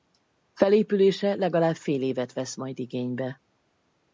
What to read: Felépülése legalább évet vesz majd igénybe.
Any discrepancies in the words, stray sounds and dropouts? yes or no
yes